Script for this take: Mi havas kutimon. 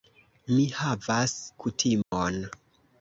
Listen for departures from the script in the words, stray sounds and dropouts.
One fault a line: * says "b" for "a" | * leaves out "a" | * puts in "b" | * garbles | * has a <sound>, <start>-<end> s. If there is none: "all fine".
* has a dropout, 2.0-2.1 s